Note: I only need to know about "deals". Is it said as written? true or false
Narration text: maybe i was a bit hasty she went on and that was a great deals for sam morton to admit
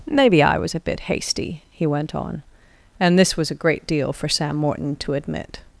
false